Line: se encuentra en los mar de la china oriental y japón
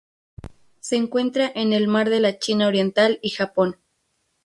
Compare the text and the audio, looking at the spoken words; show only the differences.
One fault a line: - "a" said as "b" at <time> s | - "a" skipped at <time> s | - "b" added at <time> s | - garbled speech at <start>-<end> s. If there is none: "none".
- "los" said as "el" at 1.7 s